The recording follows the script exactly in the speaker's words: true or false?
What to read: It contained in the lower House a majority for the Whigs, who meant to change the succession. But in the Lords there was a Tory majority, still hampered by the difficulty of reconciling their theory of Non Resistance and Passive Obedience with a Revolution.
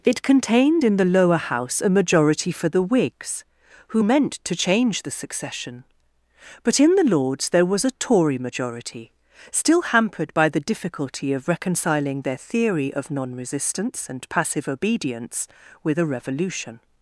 true